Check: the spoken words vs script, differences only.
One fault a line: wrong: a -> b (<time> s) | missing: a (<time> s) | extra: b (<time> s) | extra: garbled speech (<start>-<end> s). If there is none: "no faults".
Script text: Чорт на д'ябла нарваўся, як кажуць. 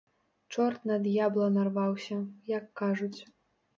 no faults